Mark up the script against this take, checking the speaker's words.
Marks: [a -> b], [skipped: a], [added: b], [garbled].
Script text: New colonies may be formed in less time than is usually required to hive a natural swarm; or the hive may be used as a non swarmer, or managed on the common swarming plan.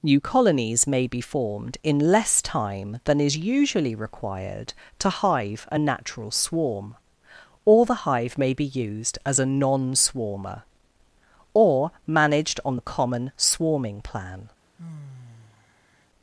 New colonies may be formed in less time than is usually required to hive a natural swarm; or the hive may be used as a non swarmer, or managed on the common swarming plan.